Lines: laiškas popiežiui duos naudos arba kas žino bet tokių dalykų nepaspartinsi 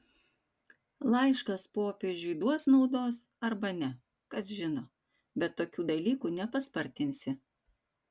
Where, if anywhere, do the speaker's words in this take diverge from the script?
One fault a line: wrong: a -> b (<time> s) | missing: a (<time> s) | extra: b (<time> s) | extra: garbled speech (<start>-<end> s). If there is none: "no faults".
extra: ne (3.8 s)